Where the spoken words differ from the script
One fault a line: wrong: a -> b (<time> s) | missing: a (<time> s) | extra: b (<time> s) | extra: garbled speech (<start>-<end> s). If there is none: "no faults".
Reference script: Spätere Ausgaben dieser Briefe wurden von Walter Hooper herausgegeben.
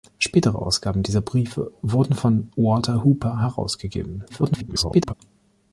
extra: garbled speech (4.3-5.1 s)